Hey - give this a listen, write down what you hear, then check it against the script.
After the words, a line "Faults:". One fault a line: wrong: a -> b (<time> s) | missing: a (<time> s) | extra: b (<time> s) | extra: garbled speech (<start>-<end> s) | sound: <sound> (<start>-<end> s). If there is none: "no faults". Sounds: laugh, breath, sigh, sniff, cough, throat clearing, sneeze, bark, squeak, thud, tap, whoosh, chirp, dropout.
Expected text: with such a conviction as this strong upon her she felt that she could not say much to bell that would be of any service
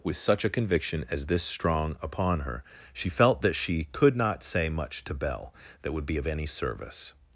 with such a conviction as this strong upon her she felt that she could not say much to bell that would be of any service
Faults:
no faults